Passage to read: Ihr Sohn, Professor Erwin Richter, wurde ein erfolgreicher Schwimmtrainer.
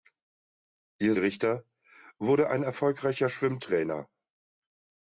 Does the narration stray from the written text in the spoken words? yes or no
yes